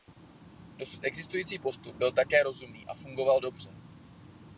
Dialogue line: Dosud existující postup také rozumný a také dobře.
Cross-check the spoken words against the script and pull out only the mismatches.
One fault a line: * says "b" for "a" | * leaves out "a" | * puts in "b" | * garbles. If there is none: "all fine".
* puts in "byl"
* says "fungoval" for "také"